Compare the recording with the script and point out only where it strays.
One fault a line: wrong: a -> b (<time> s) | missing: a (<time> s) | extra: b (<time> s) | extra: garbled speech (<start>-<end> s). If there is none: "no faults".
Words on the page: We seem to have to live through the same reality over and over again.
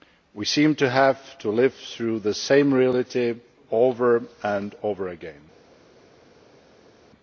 no faults